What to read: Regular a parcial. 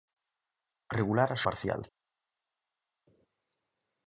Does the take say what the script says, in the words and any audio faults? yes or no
yes